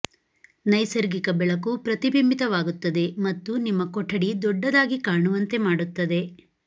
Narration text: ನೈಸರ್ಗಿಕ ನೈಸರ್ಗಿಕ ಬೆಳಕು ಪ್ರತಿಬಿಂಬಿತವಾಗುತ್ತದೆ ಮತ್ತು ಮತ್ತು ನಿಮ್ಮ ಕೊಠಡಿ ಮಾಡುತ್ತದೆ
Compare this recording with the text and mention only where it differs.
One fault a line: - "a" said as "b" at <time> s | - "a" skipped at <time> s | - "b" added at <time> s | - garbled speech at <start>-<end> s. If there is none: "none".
- "ನೈಸರ್ಗಿಕ" skipped at 1.3 s
- "ಮತ್ತು" skipped at 3.6 s
- "ದೊಡ್ಡದಾಗಿ ಕಾಣುವಂತೆ" added at 4.4 s